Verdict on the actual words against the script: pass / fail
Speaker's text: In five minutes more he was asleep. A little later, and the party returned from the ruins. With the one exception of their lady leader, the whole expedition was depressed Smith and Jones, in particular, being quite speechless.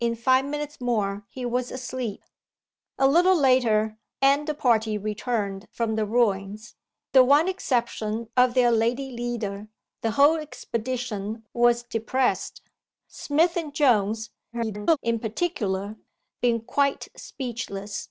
fail